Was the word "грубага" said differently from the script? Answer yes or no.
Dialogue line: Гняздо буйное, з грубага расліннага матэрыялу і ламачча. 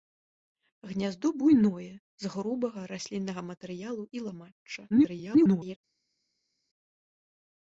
no